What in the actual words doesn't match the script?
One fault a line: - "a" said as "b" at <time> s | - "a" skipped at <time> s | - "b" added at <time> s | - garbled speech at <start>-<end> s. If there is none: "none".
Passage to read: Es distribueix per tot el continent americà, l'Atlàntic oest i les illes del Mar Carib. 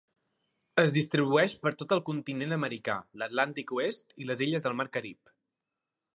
none